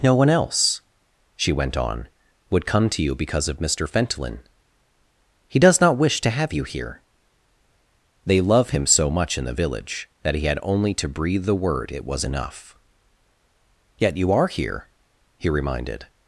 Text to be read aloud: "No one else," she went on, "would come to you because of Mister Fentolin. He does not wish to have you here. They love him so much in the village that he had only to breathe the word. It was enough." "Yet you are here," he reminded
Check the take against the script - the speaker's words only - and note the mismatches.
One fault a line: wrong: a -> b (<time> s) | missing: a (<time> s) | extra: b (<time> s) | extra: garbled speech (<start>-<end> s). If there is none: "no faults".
no faults